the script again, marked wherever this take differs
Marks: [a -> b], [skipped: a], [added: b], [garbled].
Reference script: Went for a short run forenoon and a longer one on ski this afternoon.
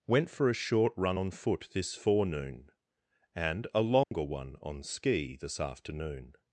Went for a short run [added: on foot this] forenoon and a longer one on ski this afternoon.